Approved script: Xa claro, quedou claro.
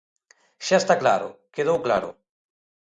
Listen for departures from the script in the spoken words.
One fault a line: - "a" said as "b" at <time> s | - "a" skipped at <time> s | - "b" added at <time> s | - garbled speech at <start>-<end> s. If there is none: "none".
- "está" added at 0.8 s